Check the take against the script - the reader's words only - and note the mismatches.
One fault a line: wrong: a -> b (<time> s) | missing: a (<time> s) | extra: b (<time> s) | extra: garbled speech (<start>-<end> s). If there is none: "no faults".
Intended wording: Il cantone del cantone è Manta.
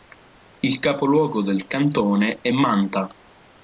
wrong: cantone -> capoluogo (0.8 s)